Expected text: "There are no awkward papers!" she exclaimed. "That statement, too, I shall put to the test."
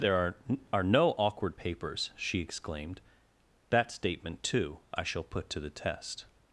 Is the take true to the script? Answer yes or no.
no